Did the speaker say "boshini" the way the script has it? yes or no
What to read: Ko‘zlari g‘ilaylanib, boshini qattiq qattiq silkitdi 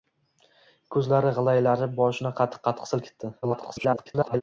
yes